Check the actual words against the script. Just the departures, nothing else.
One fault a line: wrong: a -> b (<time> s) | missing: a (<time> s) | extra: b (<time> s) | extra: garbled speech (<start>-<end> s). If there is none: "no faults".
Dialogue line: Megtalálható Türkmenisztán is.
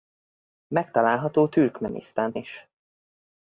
no faults